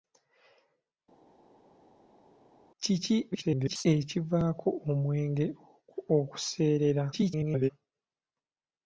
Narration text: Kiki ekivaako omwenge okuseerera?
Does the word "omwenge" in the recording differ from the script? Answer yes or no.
no